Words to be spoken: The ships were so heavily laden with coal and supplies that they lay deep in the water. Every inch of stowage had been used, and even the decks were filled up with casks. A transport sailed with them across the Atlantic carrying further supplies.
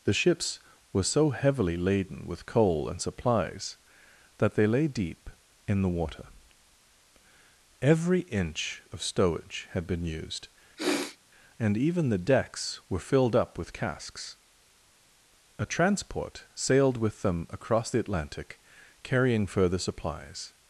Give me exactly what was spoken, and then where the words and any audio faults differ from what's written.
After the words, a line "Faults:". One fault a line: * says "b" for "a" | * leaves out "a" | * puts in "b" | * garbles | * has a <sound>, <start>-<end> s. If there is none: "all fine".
The ships were so heavily laden with coal and supplies that they lay deep in the water. Every inch of stowage had been used, and even the decks were filled up with casks. A transport sailed with them across the Atlantic carrying further supplies.
Faults:
* has a sniff, 10.8-11.2 s